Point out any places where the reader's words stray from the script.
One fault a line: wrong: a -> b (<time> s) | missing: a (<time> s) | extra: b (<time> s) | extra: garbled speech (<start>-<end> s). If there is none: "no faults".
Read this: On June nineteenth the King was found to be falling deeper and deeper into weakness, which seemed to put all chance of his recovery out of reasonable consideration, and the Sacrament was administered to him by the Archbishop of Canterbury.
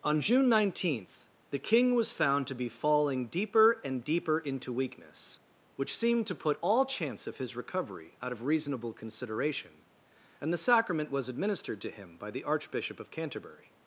no faults